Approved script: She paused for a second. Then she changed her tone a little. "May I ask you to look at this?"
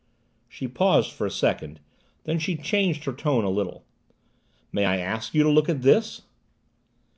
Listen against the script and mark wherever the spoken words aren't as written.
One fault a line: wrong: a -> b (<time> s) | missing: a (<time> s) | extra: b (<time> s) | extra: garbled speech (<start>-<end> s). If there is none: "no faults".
no faults